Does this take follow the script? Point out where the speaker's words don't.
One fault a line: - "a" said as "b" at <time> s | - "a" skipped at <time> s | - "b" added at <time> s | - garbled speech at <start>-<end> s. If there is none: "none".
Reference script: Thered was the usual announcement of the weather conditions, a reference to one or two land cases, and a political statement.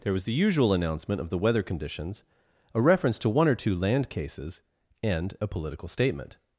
- "Thered" said as "There" at 0.0 s